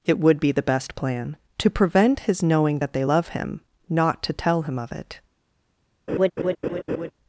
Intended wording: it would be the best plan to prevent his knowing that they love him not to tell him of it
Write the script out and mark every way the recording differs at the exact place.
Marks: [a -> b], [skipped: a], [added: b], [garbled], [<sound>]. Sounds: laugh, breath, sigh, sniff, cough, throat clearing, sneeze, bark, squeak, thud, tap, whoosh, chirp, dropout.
it would be the best plan to prevent his knowing that they love him not to tell him of it [laugh]